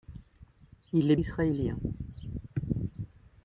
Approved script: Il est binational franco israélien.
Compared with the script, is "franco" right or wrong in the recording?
wrong